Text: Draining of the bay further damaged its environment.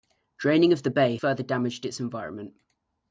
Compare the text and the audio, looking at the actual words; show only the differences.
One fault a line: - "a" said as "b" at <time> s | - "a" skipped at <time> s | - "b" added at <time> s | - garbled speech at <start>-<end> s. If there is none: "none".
none